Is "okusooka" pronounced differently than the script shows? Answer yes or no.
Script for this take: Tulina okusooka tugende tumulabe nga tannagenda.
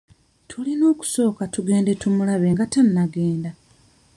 no